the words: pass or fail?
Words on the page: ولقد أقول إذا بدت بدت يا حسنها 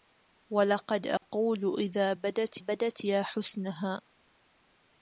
pass